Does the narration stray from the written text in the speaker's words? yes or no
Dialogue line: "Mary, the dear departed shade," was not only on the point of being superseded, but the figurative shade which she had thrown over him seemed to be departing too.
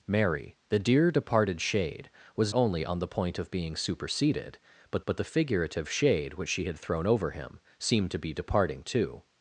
yes